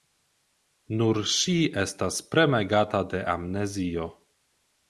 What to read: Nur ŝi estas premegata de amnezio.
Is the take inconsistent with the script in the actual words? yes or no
no